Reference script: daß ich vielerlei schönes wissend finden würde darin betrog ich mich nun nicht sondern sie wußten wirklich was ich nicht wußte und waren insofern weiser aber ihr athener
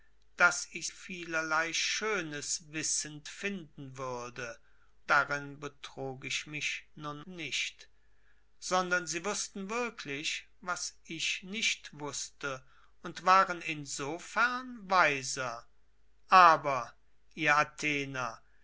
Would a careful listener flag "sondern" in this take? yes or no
no